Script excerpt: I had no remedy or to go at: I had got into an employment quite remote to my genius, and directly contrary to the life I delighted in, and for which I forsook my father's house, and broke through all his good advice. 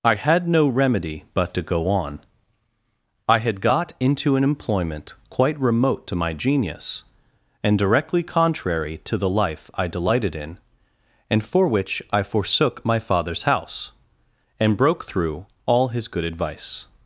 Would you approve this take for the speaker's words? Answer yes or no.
no